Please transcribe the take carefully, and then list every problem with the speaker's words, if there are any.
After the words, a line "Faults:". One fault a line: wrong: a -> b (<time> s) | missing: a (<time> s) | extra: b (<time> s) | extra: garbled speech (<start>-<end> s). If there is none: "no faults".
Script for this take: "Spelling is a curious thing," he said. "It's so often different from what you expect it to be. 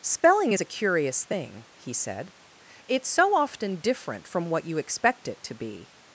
"Spelling is a curious thing," he said. "It's so often different from what you expect it to be.
Faults:
no faults